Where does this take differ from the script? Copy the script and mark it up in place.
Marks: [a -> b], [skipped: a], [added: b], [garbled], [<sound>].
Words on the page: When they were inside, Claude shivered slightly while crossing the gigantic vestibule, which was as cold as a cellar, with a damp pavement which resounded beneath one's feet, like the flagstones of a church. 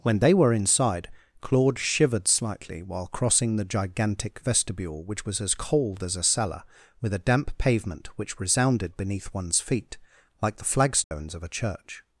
When they were inside, Claude shivered slightly while crossing the gigantic vestibule, which was as cold as a cellar, with a damp pavement which resounded beneath one's feet, like the flagstones [dropout] of a church.